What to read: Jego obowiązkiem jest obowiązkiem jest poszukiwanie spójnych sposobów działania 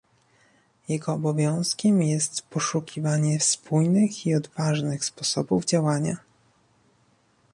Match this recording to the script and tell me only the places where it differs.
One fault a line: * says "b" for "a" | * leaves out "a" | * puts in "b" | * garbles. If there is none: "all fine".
* says "poszukiwanie spójnych i odważnych" for "obowiązkiem jest poszukiwanie spójnych"